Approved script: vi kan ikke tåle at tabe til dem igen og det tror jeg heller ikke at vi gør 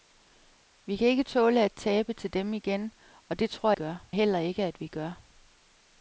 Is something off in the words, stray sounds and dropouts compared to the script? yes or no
yes